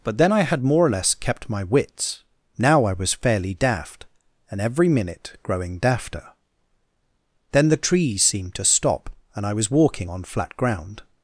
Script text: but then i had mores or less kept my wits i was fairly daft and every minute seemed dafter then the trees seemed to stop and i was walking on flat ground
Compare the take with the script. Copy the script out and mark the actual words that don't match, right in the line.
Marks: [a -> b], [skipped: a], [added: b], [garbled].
but then i had [mores -> more] or less kept my wits [added: now] i was fairly daft and every minute [seemed -> growing] dafter then the trees seemed to stop and i was walking on flat ground